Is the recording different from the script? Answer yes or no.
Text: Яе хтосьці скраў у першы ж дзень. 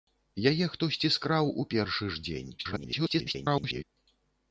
yes